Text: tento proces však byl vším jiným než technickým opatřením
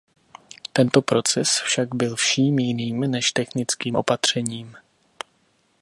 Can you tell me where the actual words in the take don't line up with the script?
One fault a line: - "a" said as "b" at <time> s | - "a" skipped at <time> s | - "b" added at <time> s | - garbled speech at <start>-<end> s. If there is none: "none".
none